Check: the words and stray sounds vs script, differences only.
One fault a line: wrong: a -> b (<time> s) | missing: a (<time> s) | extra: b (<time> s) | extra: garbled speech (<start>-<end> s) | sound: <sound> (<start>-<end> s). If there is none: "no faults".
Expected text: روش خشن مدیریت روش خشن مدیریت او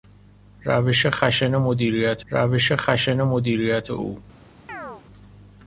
sound: chirp (4.7-5.0 s)